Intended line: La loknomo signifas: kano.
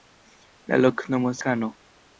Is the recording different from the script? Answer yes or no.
yes